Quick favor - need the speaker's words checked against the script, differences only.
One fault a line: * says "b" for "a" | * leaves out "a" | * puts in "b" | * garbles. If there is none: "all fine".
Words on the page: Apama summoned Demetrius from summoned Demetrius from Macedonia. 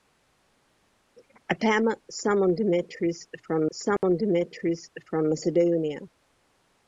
all fine